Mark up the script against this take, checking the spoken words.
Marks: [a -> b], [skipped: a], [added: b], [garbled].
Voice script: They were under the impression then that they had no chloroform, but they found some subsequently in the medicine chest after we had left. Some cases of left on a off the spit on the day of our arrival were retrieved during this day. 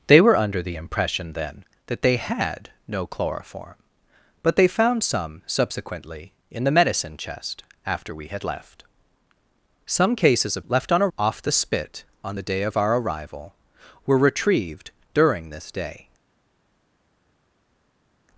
They were under the impression then that they had no chloroform, but they found some subsequently in the medicine chest after we had left. Some cases of left on a off the spit on the day of our arrival were retrieved during this day.